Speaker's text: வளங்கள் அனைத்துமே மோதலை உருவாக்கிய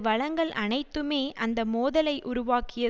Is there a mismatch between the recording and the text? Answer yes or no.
yes